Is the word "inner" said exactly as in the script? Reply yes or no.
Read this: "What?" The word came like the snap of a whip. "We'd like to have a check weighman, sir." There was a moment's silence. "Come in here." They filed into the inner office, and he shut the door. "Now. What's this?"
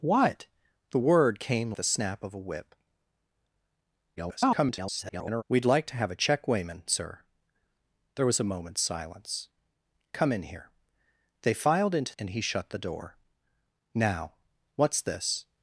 no